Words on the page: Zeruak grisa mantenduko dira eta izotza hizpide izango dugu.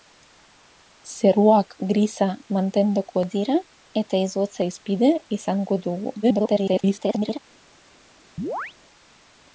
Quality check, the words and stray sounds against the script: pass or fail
fail